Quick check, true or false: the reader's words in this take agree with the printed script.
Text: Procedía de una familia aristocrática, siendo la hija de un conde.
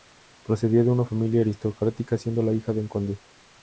true